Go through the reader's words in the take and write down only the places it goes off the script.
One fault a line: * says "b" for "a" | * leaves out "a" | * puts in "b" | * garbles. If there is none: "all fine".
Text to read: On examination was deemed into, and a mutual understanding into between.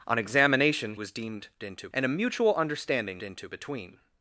all fine